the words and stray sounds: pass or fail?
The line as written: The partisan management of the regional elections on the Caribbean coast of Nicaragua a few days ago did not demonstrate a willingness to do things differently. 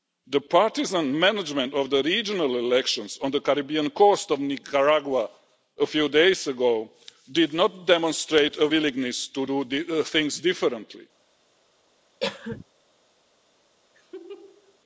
fail